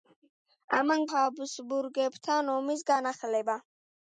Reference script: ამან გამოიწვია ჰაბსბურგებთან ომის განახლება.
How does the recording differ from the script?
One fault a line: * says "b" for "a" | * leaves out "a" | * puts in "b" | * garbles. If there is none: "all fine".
* leaves out "გამოიწვია"